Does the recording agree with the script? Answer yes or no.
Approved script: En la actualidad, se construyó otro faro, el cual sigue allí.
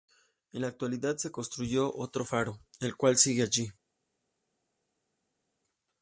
yes